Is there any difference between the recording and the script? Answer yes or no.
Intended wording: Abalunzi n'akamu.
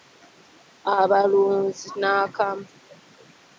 no